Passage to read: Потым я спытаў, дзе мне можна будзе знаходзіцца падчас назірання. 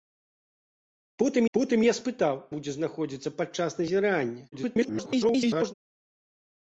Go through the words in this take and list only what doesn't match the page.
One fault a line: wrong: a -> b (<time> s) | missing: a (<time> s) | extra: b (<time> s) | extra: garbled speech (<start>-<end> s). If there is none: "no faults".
extra: потым (1.6 s)
missing: дзе мне можна (2.3 s)
extra: garbled speech (4.5-5.7 s)